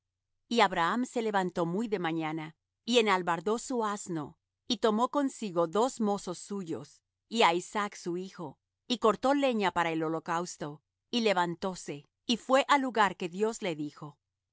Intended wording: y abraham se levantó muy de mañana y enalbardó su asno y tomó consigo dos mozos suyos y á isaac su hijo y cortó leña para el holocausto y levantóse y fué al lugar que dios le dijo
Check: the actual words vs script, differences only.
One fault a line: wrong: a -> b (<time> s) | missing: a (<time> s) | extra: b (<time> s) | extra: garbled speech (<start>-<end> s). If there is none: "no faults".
no faults